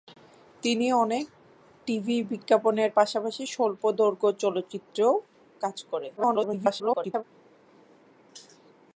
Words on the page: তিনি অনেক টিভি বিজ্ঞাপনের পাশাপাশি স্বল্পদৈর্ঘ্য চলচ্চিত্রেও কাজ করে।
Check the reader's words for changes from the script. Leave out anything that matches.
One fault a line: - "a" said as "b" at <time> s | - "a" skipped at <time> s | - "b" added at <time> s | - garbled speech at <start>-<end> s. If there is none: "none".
- garbled speech at 6.2-7.2 s